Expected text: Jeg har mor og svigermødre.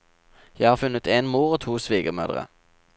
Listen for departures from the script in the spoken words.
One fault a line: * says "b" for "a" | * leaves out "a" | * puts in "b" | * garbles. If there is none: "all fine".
* puts in "funnet en"
* puts in "to"